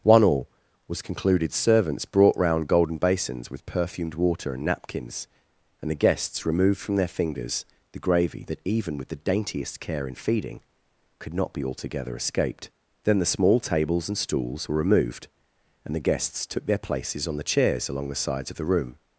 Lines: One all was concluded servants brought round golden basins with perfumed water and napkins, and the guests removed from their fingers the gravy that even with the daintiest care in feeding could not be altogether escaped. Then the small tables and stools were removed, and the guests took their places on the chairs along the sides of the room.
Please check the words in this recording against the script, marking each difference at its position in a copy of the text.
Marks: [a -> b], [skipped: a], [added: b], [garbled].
One all was concluded servants brought round golden basins with perfumed water and napkins, and the guests removed from their fingers the gravy that even with the daintiest care in feeding could not be altogether escaped. Then the small tables and stools were removed, and the guests took their places on the chairs along the sides of the room.